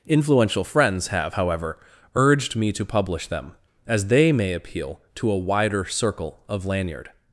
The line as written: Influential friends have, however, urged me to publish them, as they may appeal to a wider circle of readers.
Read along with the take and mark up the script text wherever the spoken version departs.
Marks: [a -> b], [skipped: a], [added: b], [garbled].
Influential friends have, however, urged me to publish them, as they may appeal to a wider circle of [readers. -> lanyard]